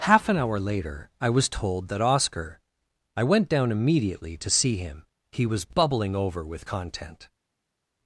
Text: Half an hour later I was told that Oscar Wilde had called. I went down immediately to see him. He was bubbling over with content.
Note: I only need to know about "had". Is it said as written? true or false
false